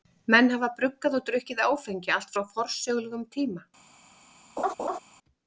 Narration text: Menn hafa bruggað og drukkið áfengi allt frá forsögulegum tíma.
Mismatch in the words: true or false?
false